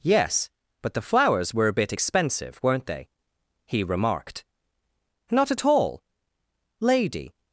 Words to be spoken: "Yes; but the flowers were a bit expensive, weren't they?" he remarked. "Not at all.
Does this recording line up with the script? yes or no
no